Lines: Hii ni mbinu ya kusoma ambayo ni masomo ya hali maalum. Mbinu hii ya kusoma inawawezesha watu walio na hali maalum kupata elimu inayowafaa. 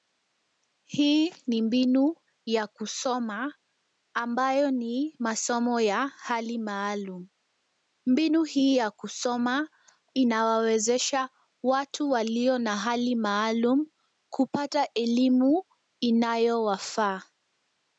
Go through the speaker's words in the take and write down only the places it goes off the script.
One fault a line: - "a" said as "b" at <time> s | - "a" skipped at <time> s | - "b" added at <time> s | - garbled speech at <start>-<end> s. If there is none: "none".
none